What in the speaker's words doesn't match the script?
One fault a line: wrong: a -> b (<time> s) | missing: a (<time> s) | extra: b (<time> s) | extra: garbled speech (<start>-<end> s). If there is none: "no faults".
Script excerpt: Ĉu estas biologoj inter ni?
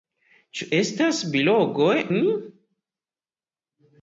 missing: inter (2.0 s)